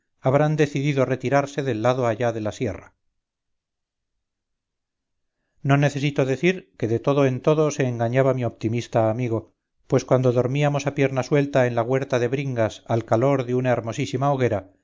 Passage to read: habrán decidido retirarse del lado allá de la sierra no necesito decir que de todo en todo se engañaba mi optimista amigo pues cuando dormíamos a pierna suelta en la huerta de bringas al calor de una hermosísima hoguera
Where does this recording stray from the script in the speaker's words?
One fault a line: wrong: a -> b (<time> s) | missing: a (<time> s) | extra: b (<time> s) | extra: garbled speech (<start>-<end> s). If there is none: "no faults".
no faults